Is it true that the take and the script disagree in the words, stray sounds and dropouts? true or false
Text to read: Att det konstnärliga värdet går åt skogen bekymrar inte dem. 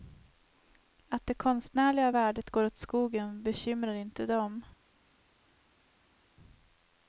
false